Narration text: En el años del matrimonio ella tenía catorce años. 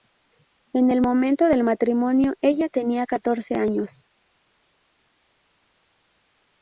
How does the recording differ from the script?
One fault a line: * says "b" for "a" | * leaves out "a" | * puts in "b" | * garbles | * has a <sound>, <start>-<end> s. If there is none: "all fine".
* says "momento" for "años"